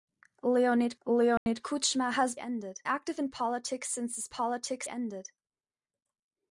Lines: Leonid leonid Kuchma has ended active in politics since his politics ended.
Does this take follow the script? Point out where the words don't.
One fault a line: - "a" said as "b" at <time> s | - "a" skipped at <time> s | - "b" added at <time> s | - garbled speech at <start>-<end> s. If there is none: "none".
none